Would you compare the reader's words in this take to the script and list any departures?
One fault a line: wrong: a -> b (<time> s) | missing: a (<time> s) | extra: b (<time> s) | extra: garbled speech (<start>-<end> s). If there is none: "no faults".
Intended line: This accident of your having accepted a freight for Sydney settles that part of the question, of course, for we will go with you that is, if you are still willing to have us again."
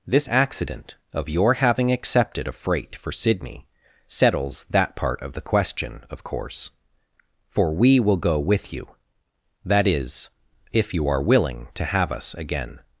missing: still (11.2 s)